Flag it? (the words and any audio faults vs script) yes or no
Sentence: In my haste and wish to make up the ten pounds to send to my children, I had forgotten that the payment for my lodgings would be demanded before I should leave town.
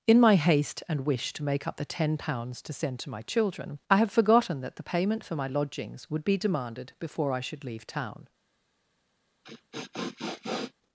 yes